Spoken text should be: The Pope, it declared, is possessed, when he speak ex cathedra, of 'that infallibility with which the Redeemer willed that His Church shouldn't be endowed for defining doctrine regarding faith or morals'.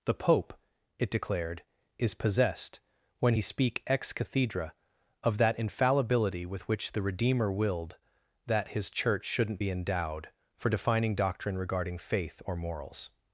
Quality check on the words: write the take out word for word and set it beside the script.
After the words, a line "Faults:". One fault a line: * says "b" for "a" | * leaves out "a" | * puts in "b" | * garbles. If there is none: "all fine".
The Pope, it declared, is possessed, when he speak ex cathedra, of 'that infallibility with which the Redeemer willed that His Church shouldn't be endowed for defining doctrine regarding faith or morals'.
Faults:
all fine